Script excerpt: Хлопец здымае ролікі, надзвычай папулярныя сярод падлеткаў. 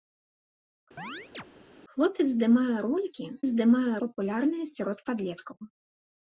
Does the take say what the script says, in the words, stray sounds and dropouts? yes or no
no